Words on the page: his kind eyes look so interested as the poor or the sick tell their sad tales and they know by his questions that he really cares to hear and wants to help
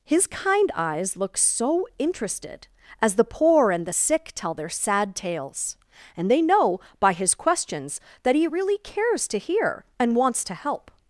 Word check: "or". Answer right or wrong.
wrong